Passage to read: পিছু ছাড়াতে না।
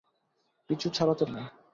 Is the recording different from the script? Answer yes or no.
no